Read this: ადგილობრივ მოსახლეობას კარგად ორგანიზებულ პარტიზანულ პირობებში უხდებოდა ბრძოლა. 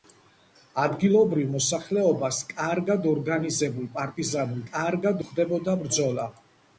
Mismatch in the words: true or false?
true